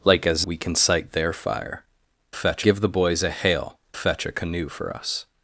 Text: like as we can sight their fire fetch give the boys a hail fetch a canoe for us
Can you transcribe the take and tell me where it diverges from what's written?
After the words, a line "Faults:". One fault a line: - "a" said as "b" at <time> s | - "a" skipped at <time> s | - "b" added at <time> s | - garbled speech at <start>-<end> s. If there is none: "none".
like as we can sight their fire fetch give the boys a hail fetch a canoe for us
Faults:
none